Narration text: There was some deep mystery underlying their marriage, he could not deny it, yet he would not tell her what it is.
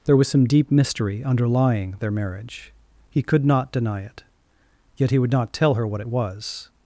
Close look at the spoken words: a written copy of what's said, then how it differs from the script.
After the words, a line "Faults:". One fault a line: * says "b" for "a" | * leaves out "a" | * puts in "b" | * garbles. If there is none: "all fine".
There was some deep mystery underlying their marriage, he could not deny it, yet he would not tell her what it was.
Faults:
* says "was" for "is"